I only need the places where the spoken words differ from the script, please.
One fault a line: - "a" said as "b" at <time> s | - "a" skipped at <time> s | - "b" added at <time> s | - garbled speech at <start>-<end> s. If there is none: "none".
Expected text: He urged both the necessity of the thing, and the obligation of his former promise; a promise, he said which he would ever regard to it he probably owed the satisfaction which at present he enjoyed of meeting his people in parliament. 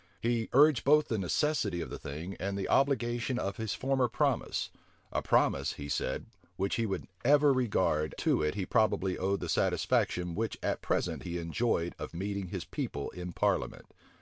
none